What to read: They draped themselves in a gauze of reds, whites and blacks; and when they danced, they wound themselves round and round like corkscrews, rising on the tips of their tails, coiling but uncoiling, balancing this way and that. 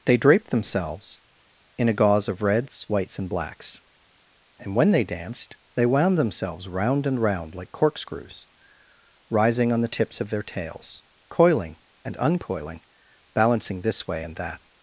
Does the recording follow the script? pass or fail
fail